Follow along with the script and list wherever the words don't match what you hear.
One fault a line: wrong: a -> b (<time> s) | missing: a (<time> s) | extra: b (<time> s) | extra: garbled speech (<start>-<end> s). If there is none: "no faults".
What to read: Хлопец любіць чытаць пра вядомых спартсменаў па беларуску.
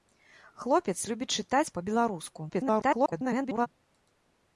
missing: пра вядомых спартсменаў (1.7 s)
extra: garbled speech (2.5-3.7 s)